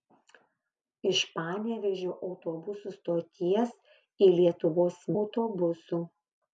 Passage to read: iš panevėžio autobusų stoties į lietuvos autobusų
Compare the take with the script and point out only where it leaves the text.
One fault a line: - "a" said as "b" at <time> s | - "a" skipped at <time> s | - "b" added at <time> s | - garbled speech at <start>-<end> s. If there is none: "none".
none